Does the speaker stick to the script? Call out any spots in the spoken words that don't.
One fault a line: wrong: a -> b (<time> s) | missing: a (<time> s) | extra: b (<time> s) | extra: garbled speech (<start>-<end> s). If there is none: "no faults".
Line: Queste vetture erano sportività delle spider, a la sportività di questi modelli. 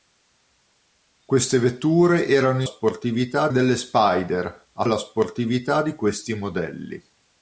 no faults